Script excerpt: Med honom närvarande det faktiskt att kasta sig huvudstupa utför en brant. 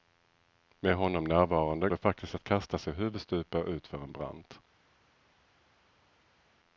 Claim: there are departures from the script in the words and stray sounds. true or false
false